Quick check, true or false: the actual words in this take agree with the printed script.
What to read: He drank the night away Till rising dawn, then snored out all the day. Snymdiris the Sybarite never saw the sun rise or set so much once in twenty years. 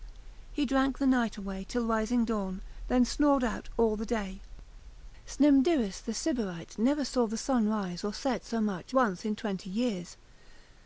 true